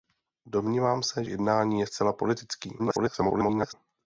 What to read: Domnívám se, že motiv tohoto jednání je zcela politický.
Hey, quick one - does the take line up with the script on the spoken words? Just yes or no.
no